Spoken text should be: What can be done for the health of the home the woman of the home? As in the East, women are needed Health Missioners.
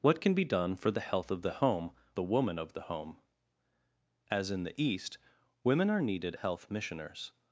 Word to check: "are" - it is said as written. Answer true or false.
true